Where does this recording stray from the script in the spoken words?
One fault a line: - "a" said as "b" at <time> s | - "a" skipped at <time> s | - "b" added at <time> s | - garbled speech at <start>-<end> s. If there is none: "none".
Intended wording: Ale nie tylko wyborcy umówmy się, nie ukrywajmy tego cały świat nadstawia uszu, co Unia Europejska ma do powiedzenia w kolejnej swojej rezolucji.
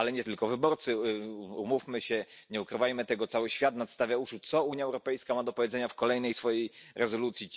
none